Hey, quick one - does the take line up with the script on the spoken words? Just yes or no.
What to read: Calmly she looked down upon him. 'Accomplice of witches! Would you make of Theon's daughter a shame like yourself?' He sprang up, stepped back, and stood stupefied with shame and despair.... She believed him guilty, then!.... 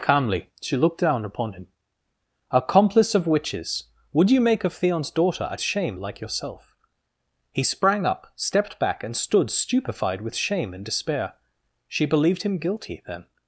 yes